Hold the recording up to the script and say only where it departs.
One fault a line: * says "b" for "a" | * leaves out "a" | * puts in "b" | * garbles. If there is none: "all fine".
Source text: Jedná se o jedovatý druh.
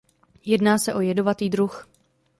all fine